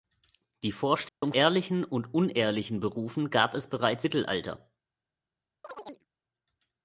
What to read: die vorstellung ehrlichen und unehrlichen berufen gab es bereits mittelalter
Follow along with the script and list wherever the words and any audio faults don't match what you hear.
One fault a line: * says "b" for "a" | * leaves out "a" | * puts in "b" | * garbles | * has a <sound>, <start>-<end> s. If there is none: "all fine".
* has a dropout, 1.1-1.2 s
* has a chirp, 5.6-6.1 s